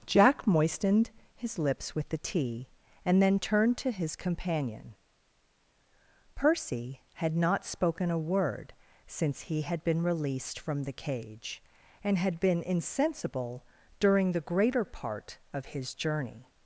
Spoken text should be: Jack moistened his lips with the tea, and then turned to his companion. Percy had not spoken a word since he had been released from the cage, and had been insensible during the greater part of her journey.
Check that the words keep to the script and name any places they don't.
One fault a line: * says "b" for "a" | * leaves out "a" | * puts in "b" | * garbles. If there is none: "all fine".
* says "his" for "her"